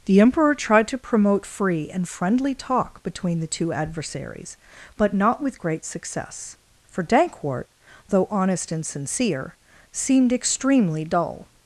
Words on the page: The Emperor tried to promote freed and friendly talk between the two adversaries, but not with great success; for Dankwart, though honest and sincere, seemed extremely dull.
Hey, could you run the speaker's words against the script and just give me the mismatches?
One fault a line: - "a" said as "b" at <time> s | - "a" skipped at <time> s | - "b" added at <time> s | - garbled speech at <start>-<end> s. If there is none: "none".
- "freed" said as "free" at 1.4 s